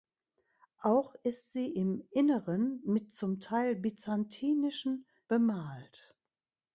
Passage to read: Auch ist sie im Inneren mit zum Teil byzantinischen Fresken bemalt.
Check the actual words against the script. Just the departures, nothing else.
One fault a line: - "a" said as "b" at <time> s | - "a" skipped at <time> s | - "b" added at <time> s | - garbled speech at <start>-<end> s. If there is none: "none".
- "Fresken" skipped at 5.1 s